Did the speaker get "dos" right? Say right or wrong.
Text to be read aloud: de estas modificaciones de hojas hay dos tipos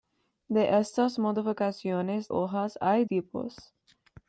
wrong